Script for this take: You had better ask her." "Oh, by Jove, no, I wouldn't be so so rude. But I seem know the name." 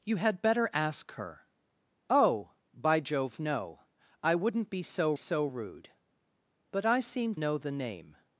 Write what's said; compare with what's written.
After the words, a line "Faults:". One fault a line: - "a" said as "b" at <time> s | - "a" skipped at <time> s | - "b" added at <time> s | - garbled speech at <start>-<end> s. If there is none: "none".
You had better ask her." "Oh, by Jove, no, I wouldn't be so so rude. But I seem know the name."
Faults:
none